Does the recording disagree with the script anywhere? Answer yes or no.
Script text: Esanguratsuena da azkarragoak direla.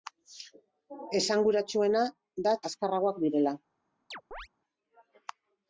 no